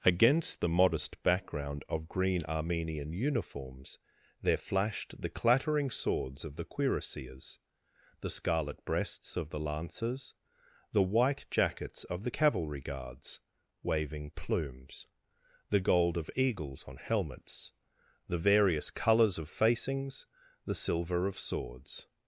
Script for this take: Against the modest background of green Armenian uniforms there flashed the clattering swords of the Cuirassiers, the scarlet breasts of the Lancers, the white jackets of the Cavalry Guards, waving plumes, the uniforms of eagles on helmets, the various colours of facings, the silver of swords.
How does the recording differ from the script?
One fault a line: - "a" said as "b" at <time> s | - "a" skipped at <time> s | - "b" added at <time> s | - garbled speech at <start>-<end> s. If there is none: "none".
- "uniforms" said as "gold" at 15.8 s